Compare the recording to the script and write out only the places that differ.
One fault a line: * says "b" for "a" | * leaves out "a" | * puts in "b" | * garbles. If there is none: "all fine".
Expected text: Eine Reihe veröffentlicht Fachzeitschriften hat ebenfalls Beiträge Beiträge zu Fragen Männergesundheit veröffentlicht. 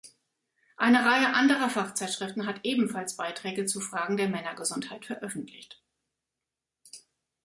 * says "anderer" for "veröffentlicht"
* leaves out "Beiträge"
* puts in "der"